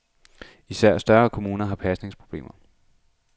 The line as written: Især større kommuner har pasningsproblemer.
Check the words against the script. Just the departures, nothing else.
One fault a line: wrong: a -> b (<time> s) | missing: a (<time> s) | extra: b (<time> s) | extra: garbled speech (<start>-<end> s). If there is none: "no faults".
no faults